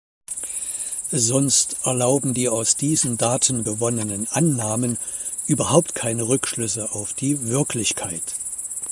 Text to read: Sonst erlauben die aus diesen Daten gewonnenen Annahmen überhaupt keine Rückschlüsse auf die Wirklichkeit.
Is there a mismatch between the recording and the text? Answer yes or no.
no